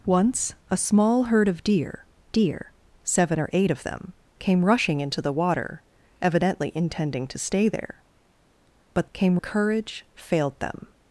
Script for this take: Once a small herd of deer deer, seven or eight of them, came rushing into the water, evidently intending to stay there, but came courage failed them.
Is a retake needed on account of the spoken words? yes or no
no